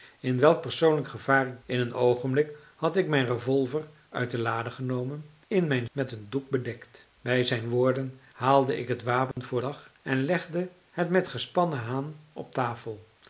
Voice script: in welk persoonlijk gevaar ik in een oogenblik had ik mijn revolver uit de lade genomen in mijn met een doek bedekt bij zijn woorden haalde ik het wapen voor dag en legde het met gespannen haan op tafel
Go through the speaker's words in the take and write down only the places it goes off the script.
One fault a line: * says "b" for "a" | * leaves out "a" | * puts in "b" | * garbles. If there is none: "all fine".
all fine